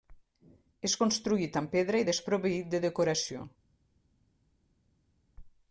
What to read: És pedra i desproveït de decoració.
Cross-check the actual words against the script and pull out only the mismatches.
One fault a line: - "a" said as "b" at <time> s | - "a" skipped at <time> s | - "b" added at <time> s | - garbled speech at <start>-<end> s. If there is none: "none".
- "construït amb" added at 1.0 s